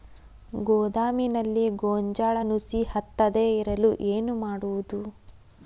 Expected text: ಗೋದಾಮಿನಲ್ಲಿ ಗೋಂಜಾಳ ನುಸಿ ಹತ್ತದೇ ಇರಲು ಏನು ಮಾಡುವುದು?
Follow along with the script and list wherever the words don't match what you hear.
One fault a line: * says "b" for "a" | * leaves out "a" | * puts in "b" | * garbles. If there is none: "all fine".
all fine